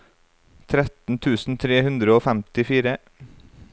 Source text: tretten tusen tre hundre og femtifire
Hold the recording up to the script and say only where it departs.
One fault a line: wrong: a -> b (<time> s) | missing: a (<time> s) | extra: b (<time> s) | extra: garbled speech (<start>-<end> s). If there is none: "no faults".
no faults